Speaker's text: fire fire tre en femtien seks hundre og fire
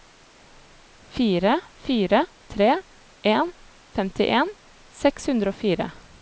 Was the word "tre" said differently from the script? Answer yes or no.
no